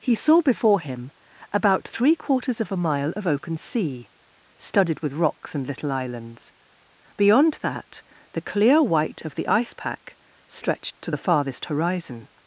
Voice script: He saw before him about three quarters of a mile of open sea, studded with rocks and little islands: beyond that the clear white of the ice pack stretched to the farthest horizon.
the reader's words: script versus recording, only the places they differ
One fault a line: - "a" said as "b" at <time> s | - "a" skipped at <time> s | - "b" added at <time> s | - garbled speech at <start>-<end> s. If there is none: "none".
none